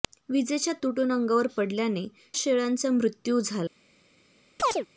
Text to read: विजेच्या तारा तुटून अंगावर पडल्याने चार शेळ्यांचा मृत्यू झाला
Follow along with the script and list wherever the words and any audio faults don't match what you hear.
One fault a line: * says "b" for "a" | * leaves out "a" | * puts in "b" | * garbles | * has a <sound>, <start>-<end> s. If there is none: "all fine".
* leaves out "तारा"
* leaves out "चार"
* has a chirp, 4.6-4.9 s